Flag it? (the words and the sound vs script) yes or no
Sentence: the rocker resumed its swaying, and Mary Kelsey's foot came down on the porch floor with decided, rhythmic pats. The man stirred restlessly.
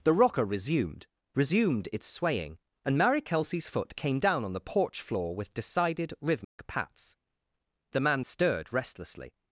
yes